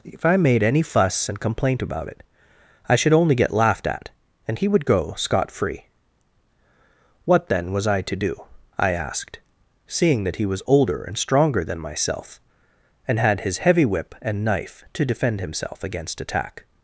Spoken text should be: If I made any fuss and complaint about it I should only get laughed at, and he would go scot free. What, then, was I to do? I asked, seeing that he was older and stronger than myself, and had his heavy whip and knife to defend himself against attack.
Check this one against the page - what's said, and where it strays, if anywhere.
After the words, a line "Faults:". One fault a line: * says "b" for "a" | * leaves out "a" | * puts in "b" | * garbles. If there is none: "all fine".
If I made any fuss and complaint about it I should only get laughed at, and he would go scot free. What, then, was I to do? I asked, seeing that he was older and stronger than myself, and had his heavy whip and knife to defend himself against attack.
Faults:
all fine